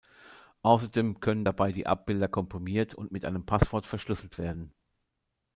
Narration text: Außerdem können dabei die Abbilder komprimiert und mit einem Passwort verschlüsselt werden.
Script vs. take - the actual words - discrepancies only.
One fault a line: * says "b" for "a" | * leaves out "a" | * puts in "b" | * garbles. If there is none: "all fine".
all fine